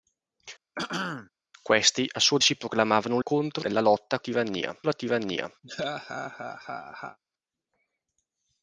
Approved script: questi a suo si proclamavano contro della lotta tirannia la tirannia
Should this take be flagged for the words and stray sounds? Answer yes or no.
yes